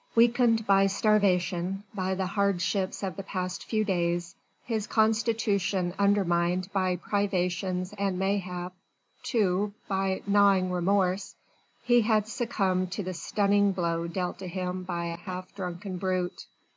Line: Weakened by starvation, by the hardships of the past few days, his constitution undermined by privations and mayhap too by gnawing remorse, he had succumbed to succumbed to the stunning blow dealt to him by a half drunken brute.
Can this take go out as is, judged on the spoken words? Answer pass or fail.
fail